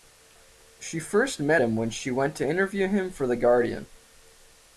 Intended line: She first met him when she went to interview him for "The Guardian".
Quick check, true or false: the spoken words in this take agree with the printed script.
true